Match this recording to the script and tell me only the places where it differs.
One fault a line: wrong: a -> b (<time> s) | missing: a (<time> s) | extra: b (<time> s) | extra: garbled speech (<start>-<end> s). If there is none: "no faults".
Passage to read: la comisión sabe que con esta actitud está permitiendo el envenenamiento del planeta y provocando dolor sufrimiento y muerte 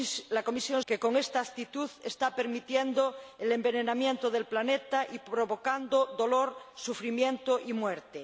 missing: sabe (0.8 s)